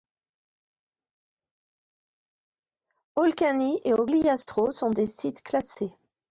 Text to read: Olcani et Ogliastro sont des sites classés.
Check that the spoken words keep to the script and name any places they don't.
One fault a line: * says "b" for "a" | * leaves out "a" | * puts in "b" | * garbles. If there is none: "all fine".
all fine